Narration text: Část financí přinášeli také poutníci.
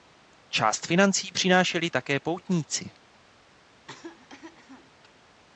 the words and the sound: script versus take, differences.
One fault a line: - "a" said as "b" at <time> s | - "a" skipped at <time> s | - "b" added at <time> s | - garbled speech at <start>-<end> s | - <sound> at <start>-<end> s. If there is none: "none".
- cough at 3.7-4.9 s